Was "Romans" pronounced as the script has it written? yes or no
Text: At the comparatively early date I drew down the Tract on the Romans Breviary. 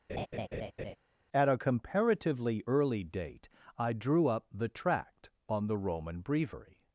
no